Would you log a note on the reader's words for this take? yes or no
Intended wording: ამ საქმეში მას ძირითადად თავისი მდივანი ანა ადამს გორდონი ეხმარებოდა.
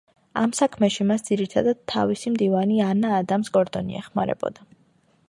no